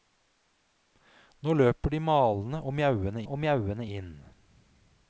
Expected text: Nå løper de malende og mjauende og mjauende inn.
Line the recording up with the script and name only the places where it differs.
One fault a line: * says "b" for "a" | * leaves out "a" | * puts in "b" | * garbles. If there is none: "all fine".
all fine